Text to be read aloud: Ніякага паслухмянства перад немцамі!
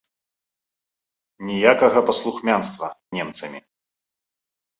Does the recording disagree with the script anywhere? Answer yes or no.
yes